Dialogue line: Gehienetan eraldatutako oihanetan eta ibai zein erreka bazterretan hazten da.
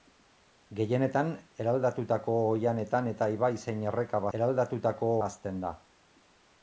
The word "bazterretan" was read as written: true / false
false